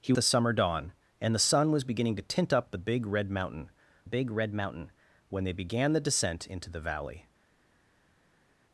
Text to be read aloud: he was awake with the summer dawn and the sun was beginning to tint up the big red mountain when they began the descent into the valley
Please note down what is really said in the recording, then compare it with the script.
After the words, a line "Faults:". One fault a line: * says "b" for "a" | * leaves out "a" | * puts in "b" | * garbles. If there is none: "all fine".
he the summer dawn and the sun was beginning to tint up the big red mountain big red mountain when they began the descent into the valley
Faults:
* leaves out "was awake with"
* puts in "big red mountain"